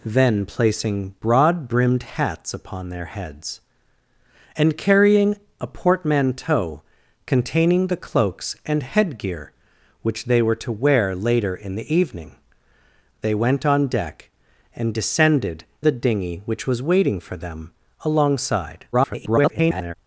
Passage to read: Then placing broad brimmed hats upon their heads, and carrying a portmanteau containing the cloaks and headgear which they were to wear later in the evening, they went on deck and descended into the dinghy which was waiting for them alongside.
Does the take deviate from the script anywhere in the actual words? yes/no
yes